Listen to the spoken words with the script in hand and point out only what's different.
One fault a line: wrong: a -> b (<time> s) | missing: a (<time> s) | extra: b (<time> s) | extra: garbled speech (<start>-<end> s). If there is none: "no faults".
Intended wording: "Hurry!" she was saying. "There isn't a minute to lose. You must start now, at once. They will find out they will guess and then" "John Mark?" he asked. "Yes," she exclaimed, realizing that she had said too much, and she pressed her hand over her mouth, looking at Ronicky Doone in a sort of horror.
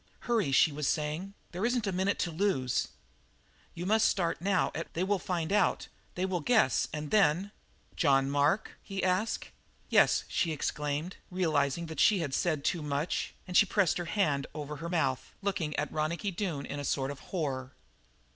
missing: once (4.9 s)